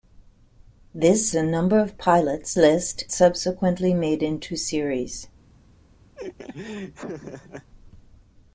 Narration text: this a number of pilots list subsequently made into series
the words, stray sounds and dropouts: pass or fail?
fail